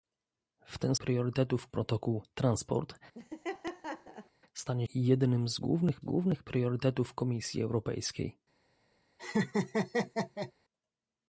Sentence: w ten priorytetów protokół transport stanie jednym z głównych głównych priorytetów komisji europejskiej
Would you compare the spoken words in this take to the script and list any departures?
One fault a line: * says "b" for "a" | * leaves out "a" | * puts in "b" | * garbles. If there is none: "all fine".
all fine